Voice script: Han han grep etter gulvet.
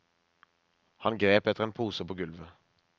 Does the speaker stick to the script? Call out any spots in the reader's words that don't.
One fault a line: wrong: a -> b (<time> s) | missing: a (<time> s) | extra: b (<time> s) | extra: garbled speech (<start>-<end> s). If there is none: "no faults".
missing: han (1.2 s)
extra: en pose på (1.6 s)